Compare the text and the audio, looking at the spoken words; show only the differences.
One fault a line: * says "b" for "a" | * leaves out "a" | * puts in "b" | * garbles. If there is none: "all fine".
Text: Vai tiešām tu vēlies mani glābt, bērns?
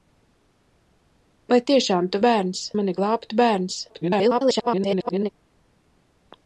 * says "bērns" for "vēlies"
* garbles